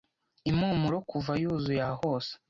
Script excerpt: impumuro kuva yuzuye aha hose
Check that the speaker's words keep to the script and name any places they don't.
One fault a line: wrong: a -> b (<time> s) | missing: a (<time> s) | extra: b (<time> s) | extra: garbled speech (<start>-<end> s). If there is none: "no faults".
no faults